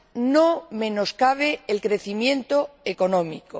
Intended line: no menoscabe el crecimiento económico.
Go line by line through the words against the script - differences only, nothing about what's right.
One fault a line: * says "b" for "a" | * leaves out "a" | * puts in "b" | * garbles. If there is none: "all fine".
all fine